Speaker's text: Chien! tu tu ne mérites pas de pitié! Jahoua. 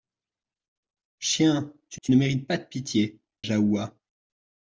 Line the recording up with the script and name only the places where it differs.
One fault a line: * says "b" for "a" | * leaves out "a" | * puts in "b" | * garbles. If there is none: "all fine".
all fine